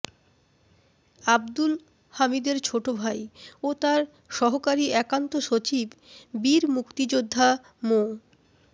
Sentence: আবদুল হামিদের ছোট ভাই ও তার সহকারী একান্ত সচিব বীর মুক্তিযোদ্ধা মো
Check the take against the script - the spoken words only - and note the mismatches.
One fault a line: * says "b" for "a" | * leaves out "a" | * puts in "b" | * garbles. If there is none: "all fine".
all fine